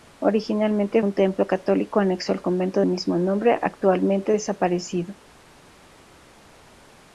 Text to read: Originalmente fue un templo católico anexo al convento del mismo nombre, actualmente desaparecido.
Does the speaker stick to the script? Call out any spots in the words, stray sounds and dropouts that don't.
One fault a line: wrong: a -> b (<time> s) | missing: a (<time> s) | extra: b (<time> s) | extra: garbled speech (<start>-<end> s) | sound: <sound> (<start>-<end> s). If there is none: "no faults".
missing: fue (1.0 s)
missing: del (2.8 s)